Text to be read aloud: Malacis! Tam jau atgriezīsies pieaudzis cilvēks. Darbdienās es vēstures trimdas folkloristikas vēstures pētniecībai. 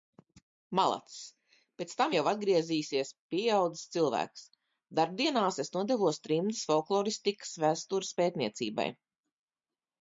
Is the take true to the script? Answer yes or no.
no